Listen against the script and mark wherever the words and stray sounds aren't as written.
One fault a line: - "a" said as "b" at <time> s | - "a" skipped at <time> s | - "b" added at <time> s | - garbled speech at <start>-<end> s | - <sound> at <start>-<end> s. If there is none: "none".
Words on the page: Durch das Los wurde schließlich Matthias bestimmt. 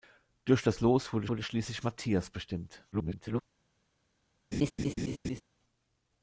- "wurde" added at 1.3 s
- garbled speech at 2.9-3.4 s
- laugh at 4.5-5.4 s